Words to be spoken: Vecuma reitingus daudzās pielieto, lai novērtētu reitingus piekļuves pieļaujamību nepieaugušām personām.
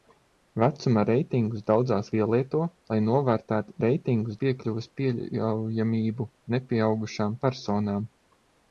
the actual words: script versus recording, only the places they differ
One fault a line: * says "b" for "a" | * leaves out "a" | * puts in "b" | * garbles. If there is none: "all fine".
all fine